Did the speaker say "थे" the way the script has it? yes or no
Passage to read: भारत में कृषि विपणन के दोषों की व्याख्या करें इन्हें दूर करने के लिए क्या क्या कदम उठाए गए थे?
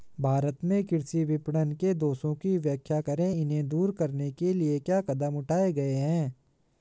no